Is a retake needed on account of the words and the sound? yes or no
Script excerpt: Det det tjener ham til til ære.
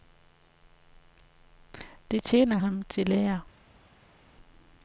yes